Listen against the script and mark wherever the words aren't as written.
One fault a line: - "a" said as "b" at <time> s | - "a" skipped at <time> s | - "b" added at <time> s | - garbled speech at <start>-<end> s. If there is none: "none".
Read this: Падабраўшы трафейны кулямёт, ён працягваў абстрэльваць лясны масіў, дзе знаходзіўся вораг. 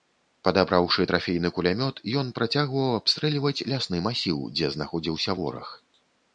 none